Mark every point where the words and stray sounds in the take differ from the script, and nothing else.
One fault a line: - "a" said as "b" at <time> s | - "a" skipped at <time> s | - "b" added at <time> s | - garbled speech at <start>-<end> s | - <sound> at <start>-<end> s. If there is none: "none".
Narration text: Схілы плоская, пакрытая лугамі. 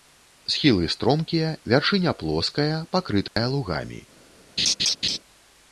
- "стромкія вяршыня" added at 0.9 s
- dropout at 3.3-3.4 s
- laugh at 4.6-5.2 s